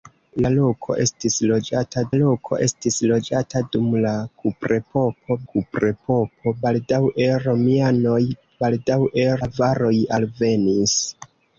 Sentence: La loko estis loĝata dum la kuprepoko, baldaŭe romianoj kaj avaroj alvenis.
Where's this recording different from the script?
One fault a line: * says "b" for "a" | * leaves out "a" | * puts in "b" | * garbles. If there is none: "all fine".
* puts in "loko estis loĝata"
* puts in "kuprepoko"
* says "baldaŭe" for "kaj"